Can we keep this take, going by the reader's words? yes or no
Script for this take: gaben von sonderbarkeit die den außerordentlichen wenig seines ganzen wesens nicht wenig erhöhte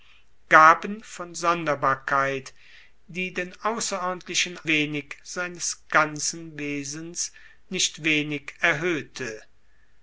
yes